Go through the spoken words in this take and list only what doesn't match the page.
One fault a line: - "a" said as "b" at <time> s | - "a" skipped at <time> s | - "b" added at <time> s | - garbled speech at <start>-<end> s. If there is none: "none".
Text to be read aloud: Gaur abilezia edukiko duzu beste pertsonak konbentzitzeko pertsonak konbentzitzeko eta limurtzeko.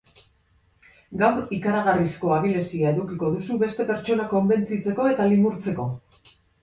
- "ikaragarrizko" added at 1.6 s
- "pertsonak konbentzitzeko" skipped at 5.1 s